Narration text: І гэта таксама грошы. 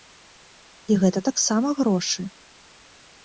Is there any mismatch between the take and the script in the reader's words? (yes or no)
no